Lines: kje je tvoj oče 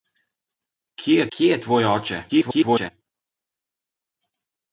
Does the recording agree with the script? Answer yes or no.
no